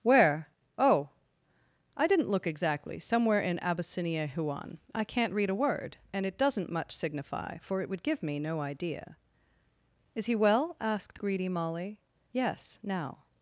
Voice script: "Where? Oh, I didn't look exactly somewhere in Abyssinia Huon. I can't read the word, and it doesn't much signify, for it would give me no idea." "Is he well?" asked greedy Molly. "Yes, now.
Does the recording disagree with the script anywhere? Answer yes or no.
yes